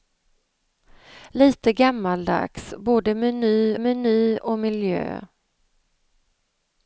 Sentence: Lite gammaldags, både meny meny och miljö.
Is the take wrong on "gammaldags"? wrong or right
right